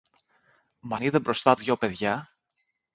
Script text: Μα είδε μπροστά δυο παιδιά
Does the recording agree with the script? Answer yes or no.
yes